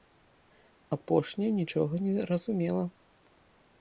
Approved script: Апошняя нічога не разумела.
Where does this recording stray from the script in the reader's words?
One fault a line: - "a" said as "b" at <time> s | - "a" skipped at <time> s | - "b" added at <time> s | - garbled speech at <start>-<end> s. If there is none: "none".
none